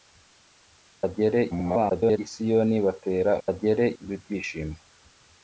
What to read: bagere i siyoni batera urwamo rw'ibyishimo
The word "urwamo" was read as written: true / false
false